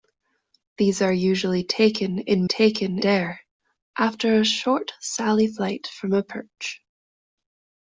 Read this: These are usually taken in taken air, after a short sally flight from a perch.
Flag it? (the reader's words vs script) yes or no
no